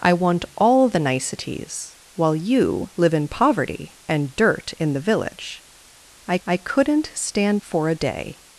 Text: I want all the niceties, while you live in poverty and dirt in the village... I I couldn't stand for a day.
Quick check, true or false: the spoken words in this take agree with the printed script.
true